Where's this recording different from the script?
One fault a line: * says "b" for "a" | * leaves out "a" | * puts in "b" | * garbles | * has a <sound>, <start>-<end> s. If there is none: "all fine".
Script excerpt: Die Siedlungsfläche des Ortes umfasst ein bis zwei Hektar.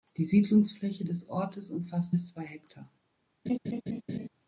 * leaves out "ein"
* has a laugh, 3.5-4.3 s